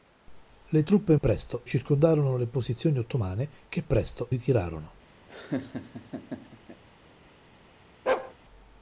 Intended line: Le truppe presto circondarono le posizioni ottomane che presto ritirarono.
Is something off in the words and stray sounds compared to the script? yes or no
yes